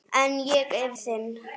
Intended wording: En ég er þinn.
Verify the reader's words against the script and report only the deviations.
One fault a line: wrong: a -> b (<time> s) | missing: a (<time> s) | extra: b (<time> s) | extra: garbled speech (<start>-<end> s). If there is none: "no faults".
no faults